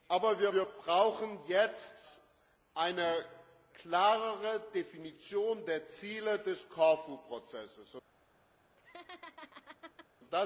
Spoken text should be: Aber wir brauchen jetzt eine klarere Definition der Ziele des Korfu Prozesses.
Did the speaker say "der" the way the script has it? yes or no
yes